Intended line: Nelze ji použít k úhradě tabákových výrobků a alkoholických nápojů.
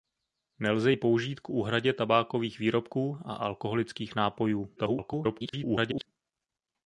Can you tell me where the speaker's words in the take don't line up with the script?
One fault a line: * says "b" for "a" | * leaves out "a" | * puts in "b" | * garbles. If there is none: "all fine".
* garbles